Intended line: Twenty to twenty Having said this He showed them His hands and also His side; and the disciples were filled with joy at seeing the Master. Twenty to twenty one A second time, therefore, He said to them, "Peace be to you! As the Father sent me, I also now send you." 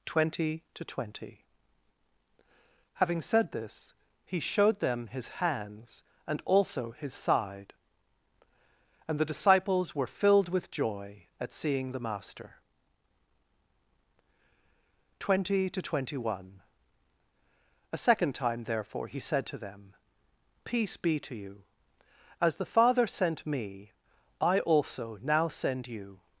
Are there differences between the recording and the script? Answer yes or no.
no